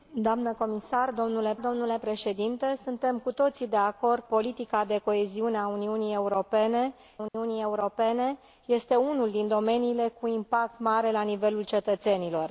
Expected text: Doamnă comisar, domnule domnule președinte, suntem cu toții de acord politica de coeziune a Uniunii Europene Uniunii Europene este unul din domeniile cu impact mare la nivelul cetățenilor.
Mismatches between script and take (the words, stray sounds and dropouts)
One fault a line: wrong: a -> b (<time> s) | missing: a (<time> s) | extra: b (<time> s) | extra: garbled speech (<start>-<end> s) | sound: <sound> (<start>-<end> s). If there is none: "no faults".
sound: dropout (7.3-7.3 s)